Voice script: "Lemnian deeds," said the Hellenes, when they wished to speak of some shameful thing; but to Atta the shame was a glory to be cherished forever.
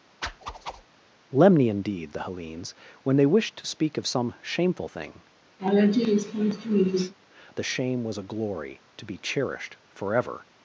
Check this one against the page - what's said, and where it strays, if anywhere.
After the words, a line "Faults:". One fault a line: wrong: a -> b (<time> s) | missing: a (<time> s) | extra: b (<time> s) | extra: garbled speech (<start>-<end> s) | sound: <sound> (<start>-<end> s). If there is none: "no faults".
"Lemnian deeds," the Hellenes, when they wished to speak of some shameful thing; the shame was a glory to be cherished forever.
Faults:
sound: whoosh (0.2-0.9 s)
missing: said (2.2 s)
missing: but to Atta (5.2 s)
sound: laugh (5.6-7.1 s)